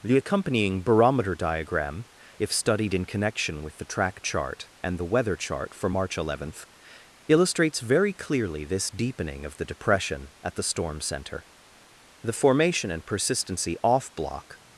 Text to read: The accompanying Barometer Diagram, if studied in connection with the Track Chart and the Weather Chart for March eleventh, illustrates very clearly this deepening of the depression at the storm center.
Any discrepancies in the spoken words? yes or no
yes